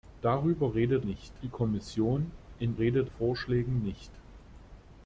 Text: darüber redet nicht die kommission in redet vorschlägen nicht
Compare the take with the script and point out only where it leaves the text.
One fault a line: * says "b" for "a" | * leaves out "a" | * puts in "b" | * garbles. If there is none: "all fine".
all fine